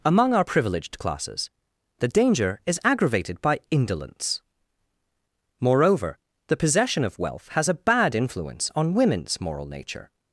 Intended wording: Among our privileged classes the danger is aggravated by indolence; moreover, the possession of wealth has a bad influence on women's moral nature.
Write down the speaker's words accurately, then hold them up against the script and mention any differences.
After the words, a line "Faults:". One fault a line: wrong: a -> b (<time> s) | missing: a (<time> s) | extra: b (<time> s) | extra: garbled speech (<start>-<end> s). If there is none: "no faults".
Among our privileged classes the danger is aggravated by indolence; moreover, the possession of wealth has a bad influence on women's moral nature.
Faults:
no faults